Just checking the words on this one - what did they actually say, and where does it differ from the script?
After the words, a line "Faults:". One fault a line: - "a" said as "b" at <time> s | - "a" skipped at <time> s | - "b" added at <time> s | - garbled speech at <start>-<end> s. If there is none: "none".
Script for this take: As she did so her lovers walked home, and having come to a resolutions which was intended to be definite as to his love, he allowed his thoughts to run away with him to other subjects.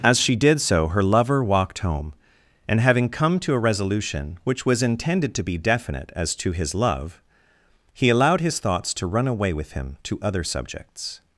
As she did so her lover walked home, and having come to a resolution which was intended to be definite as to his love, he allowed his thoughts to run away with him to other subjects.
Faults:
- "lovers" said as "lover" at 1.0 s
- "resolutions" said as "resolution" at 3.6 s